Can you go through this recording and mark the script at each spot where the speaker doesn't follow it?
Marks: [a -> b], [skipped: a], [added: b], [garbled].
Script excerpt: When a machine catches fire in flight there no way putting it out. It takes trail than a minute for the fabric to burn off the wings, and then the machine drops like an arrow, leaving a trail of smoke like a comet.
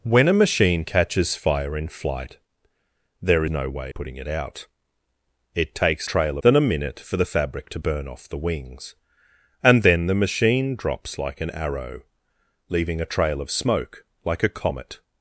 When a machine catches fire in flight there no way putting it out. It takes trail than a minute for the fabric to burn off the wings, and then the machine drops like an arrow, leaving a trail of smoke like a comet.